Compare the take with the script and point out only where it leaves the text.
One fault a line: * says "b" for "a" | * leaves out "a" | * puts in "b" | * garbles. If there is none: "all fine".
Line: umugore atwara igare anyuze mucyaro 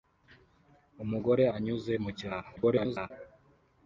* leaves out "atwara igare"
* garbles